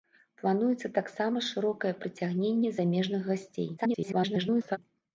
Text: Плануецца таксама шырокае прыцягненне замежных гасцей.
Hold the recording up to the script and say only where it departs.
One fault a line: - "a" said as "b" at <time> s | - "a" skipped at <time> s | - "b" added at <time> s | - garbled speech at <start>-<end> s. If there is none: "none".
- garbled speech at 3.8-4.8 s